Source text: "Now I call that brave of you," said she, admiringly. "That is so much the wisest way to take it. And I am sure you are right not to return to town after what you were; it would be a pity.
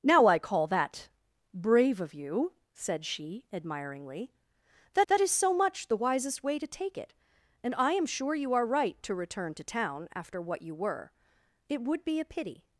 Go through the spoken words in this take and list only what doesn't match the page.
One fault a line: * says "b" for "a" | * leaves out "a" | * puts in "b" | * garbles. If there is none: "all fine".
* puts in "that"
* leaves out "not"